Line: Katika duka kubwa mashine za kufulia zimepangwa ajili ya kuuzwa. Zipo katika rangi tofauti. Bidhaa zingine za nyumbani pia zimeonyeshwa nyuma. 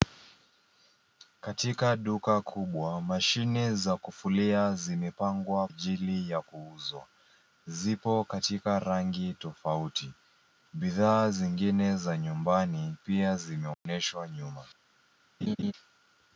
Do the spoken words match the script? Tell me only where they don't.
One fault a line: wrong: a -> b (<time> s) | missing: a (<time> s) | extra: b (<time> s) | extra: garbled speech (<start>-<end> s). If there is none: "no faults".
no faults